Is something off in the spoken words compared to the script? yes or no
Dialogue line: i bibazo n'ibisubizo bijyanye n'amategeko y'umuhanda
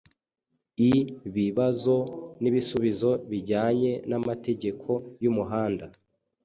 no